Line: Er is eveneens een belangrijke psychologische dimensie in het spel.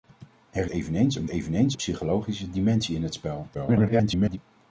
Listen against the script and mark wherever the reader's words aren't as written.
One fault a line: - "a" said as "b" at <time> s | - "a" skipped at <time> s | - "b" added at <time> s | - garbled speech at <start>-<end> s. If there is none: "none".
- "is" skipped at 0.7 s
- "belangrijke" said as "eveneens" at 1.3 s
- garbled speech at 3.5-4.4 s